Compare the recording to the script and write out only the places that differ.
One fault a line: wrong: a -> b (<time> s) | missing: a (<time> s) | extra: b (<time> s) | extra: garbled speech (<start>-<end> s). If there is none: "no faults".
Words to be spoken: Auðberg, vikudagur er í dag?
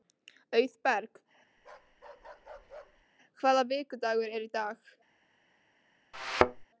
extra: hvaða (3.4 s)